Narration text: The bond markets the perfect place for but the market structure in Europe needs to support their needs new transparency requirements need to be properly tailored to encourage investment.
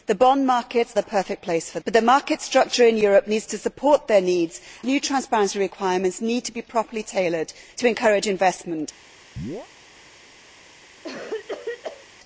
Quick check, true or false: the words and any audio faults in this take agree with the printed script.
false